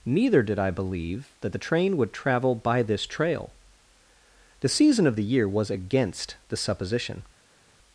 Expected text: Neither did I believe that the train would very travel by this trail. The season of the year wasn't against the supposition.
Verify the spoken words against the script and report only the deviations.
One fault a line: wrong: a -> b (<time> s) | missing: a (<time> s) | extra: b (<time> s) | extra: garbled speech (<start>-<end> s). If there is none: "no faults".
missing: very (2.1 s)
wrong: wasn't -> was (5.5 s)